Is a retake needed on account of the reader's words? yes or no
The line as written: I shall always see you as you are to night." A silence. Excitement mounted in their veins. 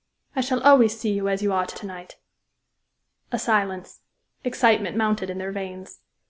yes